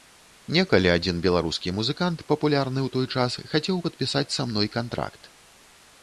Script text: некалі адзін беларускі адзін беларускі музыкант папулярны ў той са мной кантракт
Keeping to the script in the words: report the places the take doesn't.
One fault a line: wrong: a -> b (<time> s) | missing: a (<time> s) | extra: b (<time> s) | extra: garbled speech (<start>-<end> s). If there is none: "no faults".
missing: адзін беларускі (1.7 s)
extra: час хацеў падпісаць (3.2 s)